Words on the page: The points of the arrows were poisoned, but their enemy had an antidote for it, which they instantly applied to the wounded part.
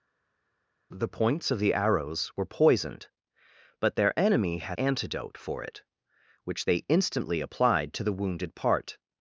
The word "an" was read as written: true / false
false